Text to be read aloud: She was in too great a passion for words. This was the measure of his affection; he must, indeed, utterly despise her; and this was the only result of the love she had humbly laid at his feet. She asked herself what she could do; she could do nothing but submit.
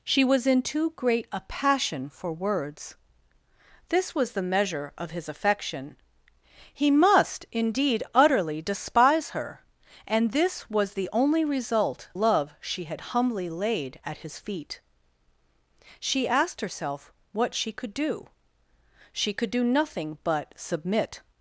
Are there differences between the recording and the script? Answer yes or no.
yes